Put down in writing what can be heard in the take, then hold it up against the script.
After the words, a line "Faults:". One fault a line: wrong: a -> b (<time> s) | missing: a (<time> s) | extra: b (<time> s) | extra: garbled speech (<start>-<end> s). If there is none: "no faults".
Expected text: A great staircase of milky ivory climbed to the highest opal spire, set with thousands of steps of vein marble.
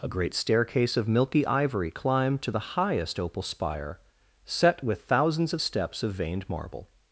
A great staircase of milky ivory climbed to the highest opal spire, set with thousands of steps of veined marble.
Faults:
wrong: vein -> veined (6.1 s)